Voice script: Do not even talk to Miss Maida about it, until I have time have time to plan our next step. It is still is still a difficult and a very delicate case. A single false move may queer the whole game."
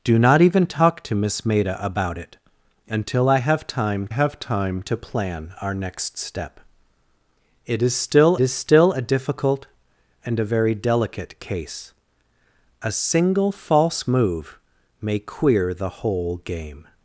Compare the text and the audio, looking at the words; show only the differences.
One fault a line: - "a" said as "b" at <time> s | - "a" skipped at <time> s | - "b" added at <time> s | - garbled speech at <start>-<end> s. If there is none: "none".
none